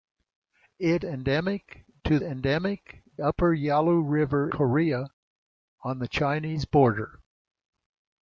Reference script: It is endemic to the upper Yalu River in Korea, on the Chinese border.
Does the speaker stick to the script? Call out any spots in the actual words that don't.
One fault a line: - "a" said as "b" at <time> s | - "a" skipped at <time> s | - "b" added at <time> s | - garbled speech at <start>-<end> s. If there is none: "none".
- "is" skipped at 1.1 s
- "the" said as "endemic" at 2.2 s
- "in" skipped at 4.5 s